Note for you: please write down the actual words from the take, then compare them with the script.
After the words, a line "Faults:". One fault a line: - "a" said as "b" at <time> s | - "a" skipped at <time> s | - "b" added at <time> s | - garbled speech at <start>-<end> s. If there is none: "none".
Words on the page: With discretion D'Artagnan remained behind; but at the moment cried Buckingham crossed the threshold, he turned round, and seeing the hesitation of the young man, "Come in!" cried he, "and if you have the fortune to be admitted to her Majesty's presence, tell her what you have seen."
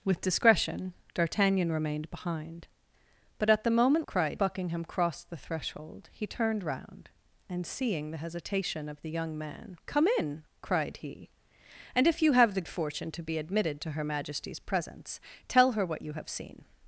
With discretion D'Artagnan remained behind; but at the moment cried Buckingham crossed the threshold, he turned round, and seeing the hesitation of the young man, "Come in!" cried he, "and if you have the fortune to be admitted to her Majesty's presence, tell her what you have seen."
Faults:
none